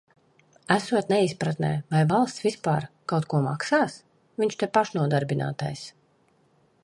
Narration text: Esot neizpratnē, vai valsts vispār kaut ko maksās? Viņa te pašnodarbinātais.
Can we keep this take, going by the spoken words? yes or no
no